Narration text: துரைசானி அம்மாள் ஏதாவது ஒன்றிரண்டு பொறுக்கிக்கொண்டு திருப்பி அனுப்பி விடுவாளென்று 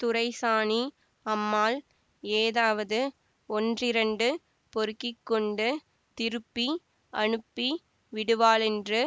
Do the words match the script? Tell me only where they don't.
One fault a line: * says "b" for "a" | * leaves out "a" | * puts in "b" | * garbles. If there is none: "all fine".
all fine